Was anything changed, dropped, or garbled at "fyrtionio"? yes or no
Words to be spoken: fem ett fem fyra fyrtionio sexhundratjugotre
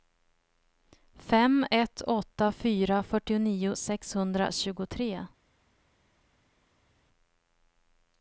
no